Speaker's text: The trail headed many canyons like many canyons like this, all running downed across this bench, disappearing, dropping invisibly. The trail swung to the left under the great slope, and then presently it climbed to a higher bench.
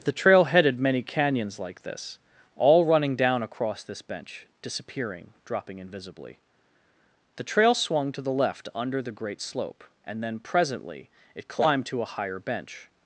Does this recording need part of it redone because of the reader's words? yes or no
yes